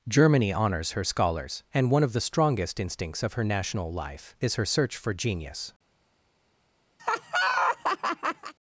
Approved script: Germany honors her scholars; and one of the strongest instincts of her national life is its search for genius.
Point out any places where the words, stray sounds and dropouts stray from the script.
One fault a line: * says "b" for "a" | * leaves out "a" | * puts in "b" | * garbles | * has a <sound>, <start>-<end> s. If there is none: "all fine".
* says "her" for "its"
* has a laugh, 7.0-8.5 s